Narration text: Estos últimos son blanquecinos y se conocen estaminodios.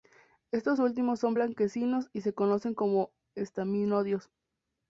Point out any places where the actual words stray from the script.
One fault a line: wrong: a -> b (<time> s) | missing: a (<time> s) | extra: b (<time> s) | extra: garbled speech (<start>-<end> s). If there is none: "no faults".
extra: como (2.7 s)